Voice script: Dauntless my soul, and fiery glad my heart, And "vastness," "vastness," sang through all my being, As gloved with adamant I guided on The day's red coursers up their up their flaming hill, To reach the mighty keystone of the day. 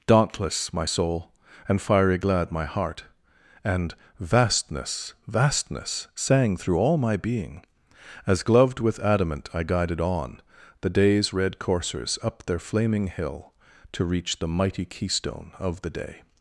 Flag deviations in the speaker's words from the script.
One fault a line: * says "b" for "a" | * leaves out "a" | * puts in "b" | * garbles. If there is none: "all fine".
* leaves out "up their"